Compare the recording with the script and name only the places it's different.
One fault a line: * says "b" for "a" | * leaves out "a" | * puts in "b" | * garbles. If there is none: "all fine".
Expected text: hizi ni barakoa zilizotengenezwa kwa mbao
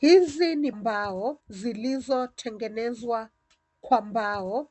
* says "mbao" for "barakoa"